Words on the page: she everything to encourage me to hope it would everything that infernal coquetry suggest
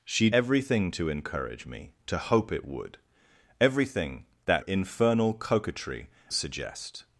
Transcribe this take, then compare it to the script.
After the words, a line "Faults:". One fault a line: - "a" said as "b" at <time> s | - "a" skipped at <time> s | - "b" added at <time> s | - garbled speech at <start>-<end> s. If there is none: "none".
she everything to encourage me to hope it would everything that infernal coquetry suggest
Faults:
none